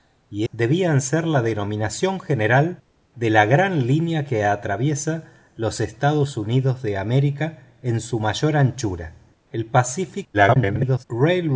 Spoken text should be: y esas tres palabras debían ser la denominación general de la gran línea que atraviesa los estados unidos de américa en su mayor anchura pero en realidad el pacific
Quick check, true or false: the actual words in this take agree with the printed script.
false